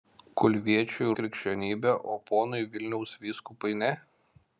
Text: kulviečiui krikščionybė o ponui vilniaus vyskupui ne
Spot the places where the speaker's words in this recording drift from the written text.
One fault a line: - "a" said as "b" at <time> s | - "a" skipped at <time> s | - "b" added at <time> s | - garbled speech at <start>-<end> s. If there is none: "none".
none